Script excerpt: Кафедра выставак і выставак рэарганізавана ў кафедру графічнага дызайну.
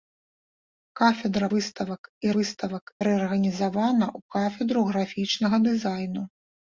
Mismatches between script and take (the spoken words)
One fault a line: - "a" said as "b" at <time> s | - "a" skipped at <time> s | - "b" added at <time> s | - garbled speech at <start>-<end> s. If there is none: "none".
none